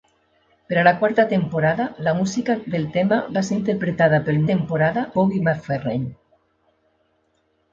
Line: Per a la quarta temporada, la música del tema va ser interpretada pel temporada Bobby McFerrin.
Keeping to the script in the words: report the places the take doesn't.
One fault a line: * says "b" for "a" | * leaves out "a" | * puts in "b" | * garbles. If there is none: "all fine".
all fine